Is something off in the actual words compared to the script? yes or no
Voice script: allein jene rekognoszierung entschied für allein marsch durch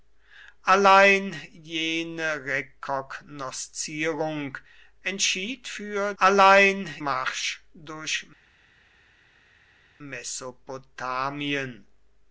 no